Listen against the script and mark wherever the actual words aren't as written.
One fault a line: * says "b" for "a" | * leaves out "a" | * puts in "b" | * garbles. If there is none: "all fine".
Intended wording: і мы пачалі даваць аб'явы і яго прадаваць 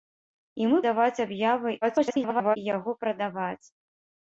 * leaves out "пачалі"
* garbles